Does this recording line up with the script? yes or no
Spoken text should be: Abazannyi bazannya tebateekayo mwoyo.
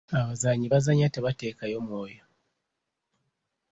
yes